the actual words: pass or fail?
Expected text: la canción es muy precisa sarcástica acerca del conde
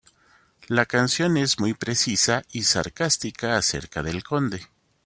fail